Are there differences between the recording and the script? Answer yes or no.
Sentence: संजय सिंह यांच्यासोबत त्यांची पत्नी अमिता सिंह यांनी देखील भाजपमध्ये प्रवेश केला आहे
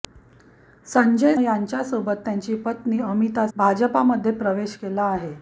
yes